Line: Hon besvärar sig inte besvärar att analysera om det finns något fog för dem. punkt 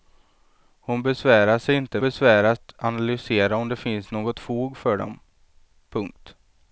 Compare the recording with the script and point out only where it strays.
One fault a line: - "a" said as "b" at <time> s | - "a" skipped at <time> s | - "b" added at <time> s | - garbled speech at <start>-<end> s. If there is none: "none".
none